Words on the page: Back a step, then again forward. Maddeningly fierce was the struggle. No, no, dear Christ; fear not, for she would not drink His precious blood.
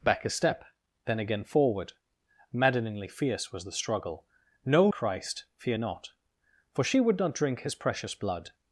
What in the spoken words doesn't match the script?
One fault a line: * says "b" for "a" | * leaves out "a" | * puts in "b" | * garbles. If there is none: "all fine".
* leaves out "no dear"